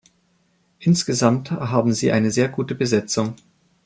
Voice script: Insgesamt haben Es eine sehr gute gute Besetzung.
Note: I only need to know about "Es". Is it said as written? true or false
false